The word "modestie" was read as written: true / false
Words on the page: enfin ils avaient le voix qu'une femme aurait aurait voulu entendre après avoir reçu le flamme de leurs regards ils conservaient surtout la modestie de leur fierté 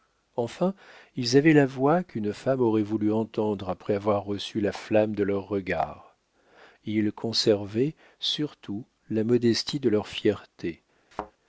true